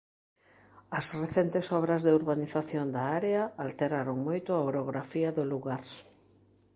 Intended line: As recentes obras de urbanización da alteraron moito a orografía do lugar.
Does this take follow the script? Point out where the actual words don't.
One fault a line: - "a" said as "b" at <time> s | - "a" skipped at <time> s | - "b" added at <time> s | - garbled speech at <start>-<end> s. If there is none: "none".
- "área" added at 3.2 s